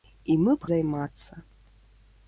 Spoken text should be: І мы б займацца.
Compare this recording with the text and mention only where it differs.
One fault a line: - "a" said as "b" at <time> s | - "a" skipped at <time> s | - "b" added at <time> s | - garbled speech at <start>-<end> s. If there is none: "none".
none